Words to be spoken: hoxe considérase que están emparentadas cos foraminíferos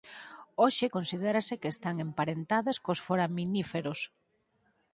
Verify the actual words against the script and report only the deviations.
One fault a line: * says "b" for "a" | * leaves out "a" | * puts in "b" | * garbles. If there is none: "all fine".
all fine